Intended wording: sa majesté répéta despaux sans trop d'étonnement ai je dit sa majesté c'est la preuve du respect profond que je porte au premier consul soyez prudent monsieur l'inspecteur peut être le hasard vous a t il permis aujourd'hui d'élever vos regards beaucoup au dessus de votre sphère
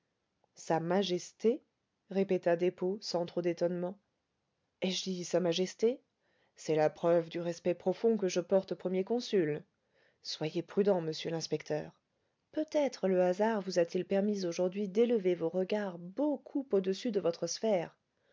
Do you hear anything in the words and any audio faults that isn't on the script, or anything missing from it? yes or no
no